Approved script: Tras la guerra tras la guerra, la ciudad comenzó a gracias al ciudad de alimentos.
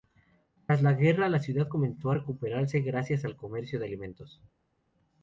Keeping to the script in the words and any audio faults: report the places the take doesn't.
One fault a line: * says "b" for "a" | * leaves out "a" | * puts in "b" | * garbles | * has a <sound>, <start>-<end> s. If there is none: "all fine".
* leaves out "tras"
* leaves out "guerra la"
* puts in "recuperarse"
* says "comercio" for "ciudad"